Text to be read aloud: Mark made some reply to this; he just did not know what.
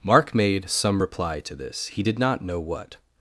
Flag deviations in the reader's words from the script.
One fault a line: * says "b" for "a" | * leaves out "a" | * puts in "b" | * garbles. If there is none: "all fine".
* leaves out "just"